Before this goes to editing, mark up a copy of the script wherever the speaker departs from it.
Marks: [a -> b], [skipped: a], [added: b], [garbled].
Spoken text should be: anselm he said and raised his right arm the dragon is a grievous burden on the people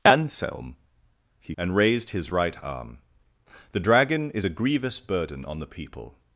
anselm he [skipped: said] and raised his right arm the dragon is a grievous burden on the people